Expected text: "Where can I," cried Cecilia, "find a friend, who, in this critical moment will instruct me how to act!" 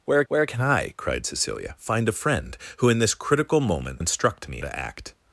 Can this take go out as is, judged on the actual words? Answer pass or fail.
fail